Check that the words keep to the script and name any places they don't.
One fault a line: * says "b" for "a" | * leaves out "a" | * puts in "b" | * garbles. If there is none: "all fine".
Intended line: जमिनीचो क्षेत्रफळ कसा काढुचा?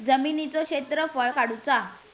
* leaves out "कसा"